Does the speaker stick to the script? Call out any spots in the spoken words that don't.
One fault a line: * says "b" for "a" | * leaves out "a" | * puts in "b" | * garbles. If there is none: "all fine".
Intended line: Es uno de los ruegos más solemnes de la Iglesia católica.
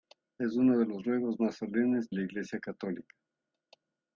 * leaves out "de"